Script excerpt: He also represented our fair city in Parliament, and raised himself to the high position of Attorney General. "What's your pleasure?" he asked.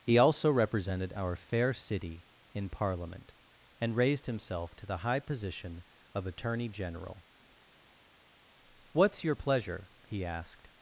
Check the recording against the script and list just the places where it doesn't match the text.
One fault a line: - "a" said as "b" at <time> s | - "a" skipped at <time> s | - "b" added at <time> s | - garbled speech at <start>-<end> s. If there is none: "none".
none